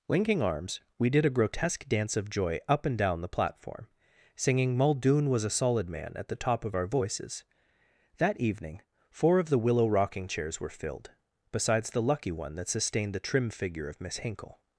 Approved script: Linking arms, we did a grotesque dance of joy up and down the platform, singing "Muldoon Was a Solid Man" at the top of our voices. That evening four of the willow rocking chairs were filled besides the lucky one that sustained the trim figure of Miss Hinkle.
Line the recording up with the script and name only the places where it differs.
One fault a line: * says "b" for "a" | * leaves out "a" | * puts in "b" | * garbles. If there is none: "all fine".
all fine